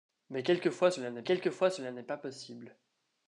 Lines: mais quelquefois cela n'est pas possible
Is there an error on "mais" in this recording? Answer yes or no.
no